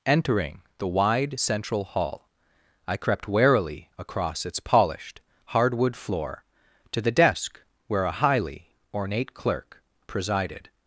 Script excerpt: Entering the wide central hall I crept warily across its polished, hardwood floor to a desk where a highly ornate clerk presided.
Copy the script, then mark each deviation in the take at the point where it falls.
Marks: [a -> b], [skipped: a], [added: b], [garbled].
Entering the wide central hall I crept warily across its polished, hardwood floor to [a -> the] desk where a highly ornate clerk presided.